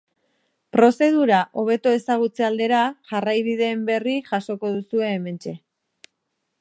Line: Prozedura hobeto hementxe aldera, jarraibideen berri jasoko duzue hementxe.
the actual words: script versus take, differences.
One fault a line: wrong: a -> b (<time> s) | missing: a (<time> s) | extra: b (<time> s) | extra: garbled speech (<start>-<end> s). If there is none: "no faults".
wrong: hementxe -> ezagutze (2.0 s)